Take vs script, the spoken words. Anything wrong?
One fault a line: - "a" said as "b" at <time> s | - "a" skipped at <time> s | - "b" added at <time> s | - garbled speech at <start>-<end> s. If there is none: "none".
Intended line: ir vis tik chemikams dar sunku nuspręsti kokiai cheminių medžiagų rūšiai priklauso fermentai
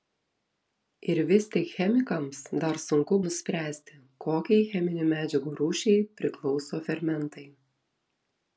none